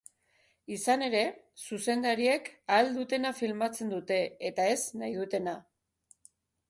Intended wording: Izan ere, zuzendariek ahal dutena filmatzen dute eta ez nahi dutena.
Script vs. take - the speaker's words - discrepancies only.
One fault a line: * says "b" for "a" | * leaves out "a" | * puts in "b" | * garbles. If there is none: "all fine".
all fine